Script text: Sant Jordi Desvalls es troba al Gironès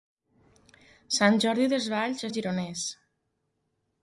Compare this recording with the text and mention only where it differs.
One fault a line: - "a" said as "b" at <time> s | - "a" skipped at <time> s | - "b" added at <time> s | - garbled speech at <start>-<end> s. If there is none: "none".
- "es troba" skipped at 2.3 s